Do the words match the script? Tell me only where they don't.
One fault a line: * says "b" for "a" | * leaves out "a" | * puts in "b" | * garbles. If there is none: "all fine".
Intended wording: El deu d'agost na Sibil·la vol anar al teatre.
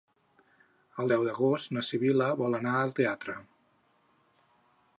all fine